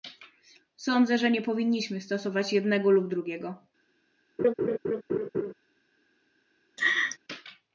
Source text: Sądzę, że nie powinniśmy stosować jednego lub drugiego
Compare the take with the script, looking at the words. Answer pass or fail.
pass